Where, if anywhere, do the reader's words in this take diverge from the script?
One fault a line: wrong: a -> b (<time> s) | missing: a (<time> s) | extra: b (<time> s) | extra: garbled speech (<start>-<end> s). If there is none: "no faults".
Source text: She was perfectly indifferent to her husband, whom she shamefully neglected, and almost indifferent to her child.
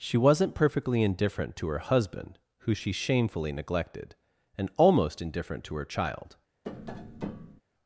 wrong: was -> wasn't (0.2 s)
wrong: whom -> who (2.6 s)